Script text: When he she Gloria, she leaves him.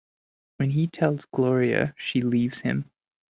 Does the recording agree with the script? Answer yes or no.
no